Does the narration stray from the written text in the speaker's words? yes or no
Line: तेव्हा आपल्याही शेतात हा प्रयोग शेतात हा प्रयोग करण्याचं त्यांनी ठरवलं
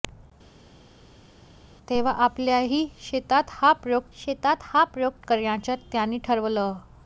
no